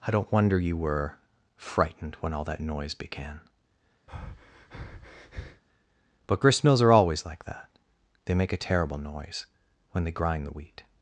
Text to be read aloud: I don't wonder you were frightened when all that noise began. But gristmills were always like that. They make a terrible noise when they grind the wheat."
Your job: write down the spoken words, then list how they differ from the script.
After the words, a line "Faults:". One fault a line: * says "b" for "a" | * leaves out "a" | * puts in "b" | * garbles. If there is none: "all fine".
I don't wonder you were frightened when all that noise began. But gristmills are always like that. They make a terrible noise when they grind the wheat."
Faults:
* says "are" for "were"